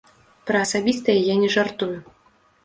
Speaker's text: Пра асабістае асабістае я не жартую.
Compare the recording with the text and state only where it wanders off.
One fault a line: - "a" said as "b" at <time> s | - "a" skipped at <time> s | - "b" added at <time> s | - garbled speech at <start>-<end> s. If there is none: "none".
- "асабістае" skipped at 1.2 s